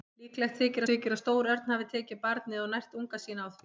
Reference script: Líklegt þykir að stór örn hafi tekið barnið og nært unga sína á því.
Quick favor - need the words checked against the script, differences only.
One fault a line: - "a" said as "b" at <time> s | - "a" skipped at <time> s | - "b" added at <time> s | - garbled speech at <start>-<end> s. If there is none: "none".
- "þykir" added at 0.9 s